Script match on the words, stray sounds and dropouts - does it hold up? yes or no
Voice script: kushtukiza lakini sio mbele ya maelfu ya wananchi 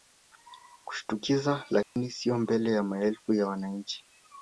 no